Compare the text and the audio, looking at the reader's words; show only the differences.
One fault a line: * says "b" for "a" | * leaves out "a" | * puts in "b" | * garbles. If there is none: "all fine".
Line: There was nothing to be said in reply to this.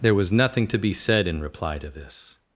all fine